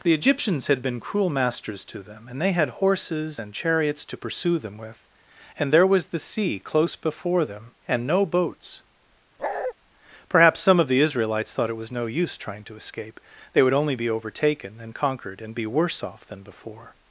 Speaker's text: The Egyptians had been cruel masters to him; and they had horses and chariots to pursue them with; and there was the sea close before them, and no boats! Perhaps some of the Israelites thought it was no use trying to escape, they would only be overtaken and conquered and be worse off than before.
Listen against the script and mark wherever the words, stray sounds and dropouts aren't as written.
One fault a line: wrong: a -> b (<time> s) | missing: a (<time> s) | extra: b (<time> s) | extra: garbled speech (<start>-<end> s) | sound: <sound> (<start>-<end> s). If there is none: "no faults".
wrong: him -> them (2.0 s)
sound: bark (9.4-9.7 s)